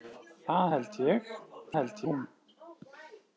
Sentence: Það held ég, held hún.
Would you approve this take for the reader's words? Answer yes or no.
yes